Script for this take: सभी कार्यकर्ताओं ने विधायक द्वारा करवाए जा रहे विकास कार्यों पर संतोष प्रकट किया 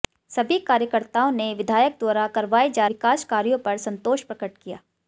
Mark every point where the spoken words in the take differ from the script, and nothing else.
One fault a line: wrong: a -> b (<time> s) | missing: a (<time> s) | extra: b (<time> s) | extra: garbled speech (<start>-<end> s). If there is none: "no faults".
missing: रहे (2.9 s)